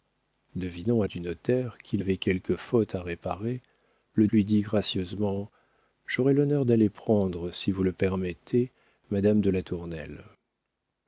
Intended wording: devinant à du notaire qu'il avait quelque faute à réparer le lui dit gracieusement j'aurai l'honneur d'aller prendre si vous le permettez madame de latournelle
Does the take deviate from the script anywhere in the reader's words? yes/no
no